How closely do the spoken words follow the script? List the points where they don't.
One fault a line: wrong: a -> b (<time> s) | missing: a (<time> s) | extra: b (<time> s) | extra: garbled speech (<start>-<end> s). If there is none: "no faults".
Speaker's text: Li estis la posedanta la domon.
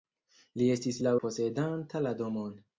no faults